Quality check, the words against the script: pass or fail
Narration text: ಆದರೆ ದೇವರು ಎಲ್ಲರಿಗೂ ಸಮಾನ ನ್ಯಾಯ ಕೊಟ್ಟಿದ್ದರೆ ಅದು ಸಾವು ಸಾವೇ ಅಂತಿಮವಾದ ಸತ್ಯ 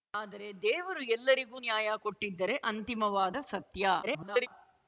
fail